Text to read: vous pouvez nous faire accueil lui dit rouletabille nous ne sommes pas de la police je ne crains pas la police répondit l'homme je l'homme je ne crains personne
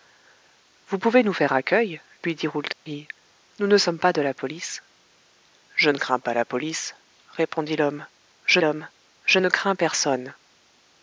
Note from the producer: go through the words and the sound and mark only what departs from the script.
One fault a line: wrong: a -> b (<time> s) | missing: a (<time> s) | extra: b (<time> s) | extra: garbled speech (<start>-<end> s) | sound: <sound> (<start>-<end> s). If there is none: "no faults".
sound: dropout (2.7-2.9 s)